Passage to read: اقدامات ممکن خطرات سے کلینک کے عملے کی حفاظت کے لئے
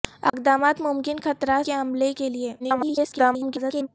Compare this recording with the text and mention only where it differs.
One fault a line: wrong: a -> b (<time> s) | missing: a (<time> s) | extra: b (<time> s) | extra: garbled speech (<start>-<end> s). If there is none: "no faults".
missing: سے کلینک (1.7 s)
missing: کی حفاظت (2.1 s)
extra: garbled speech (2.6-3.9 s)